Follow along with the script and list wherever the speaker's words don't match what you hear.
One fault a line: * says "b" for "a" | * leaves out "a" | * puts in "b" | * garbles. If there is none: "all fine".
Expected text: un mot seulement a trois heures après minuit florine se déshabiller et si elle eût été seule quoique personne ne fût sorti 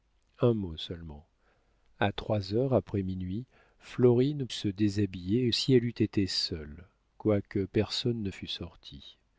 all fine